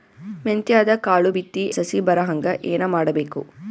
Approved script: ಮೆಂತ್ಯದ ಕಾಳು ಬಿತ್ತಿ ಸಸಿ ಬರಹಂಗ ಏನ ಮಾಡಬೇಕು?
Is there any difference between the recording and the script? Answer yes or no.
no